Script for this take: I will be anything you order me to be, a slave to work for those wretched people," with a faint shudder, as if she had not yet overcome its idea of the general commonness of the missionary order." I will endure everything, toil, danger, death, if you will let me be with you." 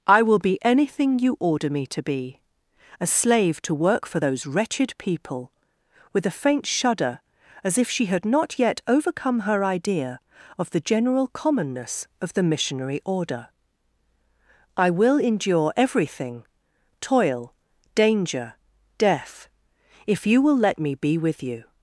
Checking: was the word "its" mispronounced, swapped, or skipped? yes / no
yes